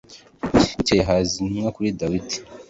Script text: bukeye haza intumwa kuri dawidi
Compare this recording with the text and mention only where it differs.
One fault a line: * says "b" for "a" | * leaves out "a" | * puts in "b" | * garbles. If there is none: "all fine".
all fine